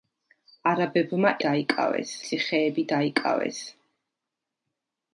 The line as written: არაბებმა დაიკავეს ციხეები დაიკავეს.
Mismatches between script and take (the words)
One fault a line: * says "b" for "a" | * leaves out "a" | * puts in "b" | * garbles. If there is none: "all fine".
all fine